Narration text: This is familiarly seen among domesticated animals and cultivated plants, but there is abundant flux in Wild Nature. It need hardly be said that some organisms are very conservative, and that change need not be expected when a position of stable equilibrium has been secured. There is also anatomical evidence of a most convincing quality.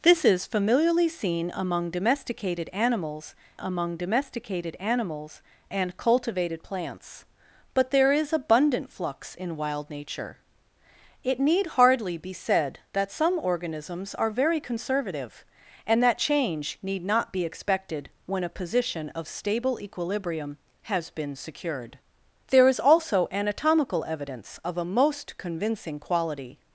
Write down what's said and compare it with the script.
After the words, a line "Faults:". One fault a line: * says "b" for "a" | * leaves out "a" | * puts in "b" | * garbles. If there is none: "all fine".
This is familiarly seen among domesticated animals among domesticated animals and cultivated plants, but there is abundant flux in Wild Nature. It need hardly be said that some organisms are very conservative, and that change need not be expected when a position of stable equilibrium has been secured. There is also anatomical evidence of a most convincing quality.
Faults:
* puts in "among domesticated animals"